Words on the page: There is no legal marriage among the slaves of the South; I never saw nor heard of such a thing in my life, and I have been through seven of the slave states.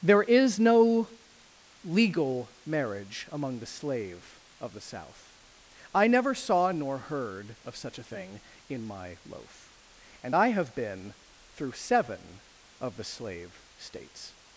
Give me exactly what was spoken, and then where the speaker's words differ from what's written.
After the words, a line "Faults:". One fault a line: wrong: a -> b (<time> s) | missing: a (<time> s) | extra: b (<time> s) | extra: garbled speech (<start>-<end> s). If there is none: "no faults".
There is no legal marriage among the slave of the South; I never saw nor heard of such a thing in my loaf, and I have been through seven of the slave states.
Faults:
wrong: slaves -> slave (3.7 s)
wrong: life -> loaf (9.2 s)